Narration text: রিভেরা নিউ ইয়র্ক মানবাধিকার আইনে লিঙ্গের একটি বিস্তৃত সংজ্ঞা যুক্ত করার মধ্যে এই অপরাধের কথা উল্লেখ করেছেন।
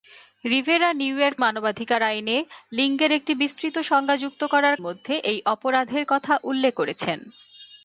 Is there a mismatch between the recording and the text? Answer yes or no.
no